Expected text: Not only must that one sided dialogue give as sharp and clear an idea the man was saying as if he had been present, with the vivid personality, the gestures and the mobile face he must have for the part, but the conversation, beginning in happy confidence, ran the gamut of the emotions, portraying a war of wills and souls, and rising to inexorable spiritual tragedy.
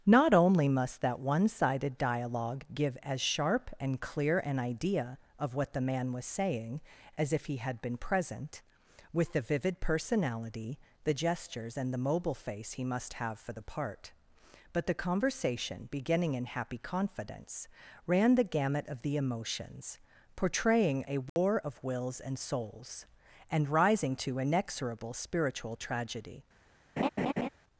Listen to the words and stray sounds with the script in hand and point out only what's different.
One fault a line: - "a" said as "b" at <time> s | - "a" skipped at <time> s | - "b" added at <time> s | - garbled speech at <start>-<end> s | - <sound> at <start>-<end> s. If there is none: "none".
- "of what" added at 5.4 s
- dropout at 21.3-21.4 s
- laugh at 27.0-27.5 s